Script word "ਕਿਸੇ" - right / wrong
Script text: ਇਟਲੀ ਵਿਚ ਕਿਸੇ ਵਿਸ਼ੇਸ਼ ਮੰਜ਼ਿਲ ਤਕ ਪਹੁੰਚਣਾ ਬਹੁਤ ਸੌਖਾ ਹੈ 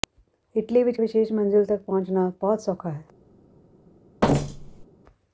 wrong